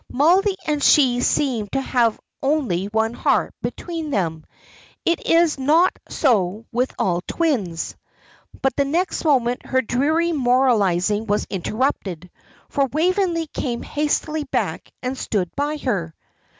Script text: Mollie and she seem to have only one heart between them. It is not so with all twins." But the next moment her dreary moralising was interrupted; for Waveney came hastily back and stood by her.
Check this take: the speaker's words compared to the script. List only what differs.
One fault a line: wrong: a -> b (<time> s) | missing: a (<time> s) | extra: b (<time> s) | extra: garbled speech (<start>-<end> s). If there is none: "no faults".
no faults